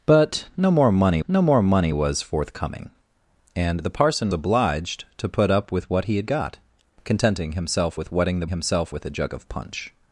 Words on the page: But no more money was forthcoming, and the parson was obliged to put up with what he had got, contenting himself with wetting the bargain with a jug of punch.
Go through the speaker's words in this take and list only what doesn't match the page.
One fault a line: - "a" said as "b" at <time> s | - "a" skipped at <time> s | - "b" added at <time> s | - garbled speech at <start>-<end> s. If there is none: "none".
- "no more money" added at 1.3 s
- "was" skipped at 4.3 s
- "bargain" said as "himself" at 8.5 s